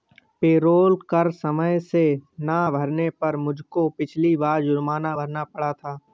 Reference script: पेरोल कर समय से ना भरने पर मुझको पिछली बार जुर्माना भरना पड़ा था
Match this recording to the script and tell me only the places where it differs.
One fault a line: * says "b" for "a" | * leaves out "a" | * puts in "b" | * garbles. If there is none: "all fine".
all fine